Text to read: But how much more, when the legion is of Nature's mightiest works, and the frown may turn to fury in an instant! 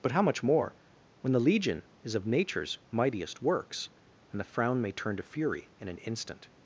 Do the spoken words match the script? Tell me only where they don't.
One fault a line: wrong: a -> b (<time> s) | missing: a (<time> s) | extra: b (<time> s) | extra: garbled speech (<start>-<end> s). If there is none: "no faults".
no faults